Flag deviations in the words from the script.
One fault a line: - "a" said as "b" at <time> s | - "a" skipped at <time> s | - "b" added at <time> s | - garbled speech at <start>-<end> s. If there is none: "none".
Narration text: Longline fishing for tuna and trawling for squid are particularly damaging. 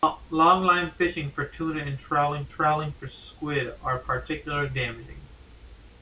- "trawling" added at 2.5 s